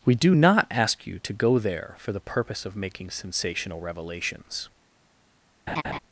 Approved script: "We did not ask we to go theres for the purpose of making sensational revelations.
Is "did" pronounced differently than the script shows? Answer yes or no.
yes